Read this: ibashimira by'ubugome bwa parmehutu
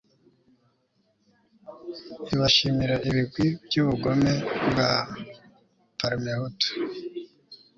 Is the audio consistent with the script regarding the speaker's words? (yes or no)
no